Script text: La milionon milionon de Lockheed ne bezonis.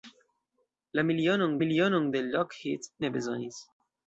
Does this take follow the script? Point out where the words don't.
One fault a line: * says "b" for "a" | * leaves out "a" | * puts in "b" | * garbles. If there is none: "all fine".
all fine